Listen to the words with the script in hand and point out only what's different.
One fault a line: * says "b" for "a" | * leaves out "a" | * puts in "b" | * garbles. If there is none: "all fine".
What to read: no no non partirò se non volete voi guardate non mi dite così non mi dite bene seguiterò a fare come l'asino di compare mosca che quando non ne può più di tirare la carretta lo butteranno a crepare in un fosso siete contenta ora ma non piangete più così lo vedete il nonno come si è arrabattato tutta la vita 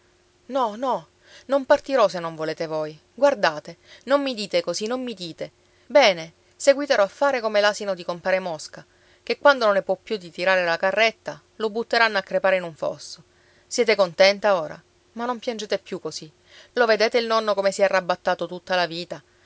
all fine